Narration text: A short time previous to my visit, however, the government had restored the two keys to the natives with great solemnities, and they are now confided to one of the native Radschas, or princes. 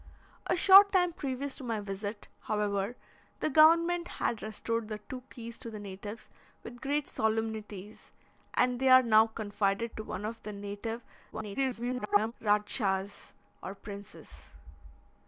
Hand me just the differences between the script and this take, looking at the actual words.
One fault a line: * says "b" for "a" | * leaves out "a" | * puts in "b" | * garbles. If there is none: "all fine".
* garbles